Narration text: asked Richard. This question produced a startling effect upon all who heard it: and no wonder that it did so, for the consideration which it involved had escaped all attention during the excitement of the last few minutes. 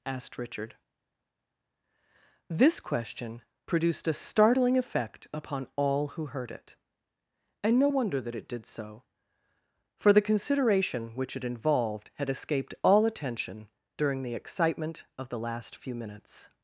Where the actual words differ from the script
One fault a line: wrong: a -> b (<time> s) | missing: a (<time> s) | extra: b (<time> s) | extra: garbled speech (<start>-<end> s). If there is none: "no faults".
no faults